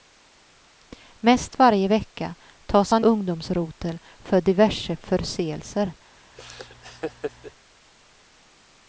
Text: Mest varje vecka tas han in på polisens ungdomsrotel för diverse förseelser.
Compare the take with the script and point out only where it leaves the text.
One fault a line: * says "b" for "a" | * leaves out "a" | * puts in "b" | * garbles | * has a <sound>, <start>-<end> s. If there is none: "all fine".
* leaves out "in på polisens"
* has a laugh, 6.3-7.5 s